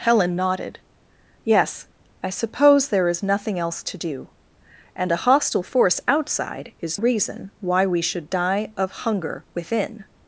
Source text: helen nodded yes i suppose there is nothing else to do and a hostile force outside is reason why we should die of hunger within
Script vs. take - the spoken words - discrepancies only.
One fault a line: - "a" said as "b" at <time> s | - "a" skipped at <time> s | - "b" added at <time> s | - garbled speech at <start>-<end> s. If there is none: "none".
none